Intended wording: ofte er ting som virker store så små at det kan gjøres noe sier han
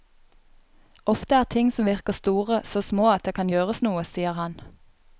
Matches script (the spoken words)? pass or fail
pass